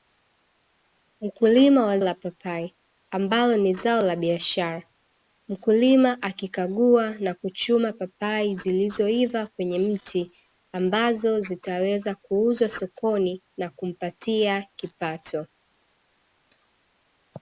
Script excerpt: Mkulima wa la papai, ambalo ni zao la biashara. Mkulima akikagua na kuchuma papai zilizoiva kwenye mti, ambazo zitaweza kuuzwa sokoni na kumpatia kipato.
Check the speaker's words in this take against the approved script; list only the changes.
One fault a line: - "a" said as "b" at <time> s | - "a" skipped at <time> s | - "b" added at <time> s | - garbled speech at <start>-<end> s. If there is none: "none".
none